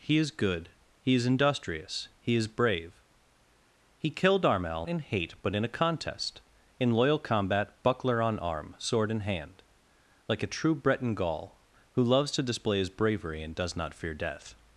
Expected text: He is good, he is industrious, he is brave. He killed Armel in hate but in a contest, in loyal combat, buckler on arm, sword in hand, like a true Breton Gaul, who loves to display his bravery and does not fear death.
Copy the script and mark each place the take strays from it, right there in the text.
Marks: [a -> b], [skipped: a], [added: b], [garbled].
He is good, he is industrious, he is brave. He killed Armel in hate but in a contest, in loyal combat, buckler on arm, sword in hand, like a true Breton Gaul, who loves to display his bravery and does not fear death.